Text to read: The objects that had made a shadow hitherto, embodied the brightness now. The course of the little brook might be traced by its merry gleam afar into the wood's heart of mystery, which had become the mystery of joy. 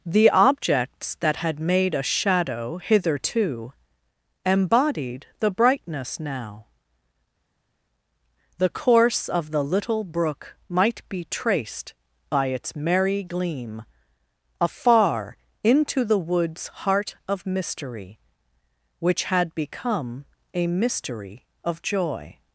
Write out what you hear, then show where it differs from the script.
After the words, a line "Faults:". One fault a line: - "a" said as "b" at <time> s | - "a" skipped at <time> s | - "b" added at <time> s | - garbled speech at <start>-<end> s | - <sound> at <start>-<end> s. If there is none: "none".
The objects that had made a shadow hitherto, embodied the brightness now. The course of the little brook might be traced by its merry gleam afar into the wood's heart of mystery, which had become a mystery of joy.
Faults:
- "the" said as "a" at 20.5 s